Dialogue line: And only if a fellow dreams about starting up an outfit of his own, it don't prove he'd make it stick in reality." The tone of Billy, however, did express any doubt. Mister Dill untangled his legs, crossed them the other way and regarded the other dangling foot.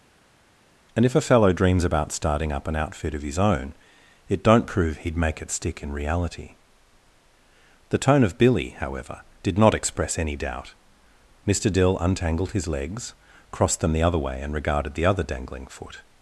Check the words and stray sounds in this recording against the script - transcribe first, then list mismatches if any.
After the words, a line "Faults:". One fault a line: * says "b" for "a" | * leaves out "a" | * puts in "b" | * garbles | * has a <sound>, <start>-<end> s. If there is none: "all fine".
And if a fellow dreams about starting up an outfit of his own, it don't prove he'd make it stick in reality." The tone of Billy, however, did not express any doubt. Mister Dill untangled his legs, crossed them the other way and regarded the other dangling foot.
Faults:
* leaves out "only"
* puts in "not"